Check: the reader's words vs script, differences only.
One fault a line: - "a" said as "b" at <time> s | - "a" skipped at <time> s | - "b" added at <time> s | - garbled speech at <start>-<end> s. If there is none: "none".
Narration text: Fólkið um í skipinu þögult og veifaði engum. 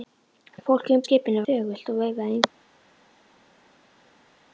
none